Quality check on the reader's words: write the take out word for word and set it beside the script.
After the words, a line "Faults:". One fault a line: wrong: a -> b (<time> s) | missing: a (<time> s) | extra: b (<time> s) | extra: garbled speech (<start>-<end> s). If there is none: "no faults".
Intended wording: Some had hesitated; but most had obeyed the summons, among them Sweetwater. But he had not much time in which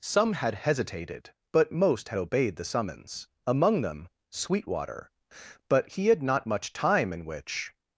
Some had hesitated; but most had obeyed the summons, among them Sweetwater. But he had not much time in which
Faults:
no faults